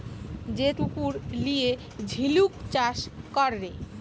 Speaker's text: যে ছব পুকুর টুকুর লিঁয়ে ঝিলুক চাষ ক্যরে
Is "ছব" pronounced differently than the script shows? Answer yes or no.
yes